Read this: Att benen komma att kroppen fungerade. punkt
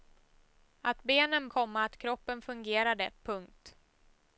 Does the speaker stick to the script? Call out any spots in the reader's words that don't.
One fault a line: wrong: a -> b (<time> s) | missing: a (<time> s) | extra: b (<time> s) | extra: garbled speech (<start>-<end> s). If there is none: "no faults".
no faults